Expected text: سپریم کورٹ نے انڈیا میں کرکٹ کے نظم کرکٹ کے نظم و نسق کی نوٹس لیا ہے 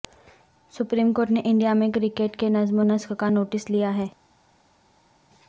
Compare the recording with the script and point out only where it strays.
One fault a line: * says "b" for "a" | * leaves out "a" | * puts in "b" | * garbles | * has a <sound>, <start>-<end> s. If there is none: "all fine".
* leaves out "کرکٹ کے نظم"
* says "کا" for "کی"